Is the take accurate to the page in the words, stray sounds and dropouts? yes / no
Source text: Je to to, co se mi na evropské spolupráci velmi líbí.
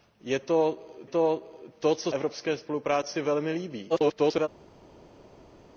no